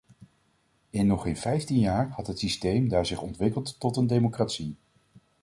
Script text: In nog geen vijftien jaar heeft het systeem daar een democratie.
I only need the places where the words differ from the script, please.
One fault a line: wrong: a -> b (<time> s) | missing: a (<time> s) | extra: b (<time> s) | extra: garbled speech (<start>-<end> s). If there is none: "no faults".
wrong: heeft -> had (2.1 s)
extra: zich ontwikkeld tot (3.0 s)